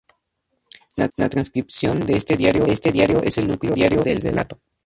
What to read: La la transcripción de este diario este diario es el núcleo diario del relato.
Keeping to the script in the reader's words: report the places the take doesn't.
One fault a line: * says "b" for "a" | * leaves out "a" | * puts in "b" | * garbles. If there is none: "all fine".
all fine